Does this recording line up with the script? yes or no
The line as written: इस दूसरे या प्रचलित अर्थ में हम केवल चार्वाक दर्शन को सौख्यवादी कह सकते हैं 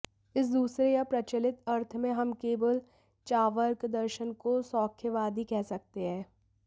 yes